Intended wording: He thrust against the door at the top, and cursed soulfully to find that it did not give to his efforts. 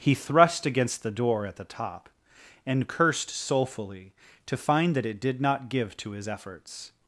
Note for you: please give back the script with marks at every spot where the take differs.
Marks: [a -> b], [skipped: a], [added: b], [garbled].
He thrust against the door at the top, and cursed soulfully to find that it did not give to his efforts.